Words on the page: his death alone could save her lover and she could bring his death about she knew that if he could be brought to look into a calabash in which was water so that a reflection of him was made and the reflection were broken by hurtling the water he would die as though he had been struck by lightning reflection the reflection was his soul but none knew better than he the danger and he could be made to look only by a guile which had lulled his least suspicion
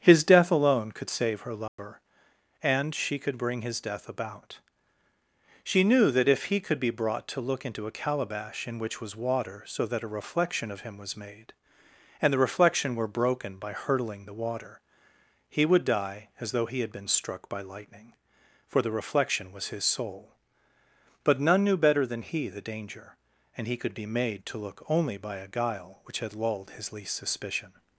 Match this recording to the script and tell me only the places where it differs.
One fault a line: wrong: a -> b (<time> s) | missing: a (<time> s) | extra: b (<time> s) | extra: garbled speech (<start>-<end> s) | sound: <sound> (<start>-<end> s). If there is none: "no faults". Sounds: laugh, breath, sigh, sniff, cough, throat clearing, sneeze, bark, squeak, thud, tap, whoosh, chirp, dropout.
sound: dropout (1.7-1.8 s)
wrong: reflection -> for (18.7 s)